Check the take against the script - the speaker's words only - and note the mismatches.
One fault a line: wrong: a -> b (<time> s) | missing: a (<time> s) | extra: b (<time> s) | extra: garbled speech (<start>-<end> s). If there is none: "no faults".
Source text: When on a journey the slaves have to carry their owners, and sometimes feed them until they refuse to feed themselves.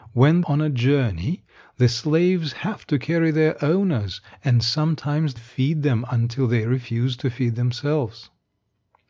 no faults